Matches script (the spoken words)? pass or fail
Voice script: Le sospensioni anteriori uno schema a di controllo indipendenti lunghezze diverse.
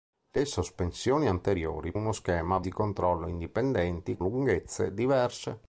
pass